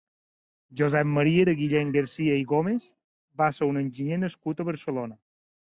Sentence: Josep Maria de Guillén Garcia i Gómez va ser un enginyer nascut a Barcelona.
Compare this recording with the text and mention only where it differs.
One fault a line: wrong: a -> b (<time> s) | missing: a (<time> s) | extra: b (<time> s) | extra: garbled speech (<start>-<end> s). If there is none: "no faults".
no faults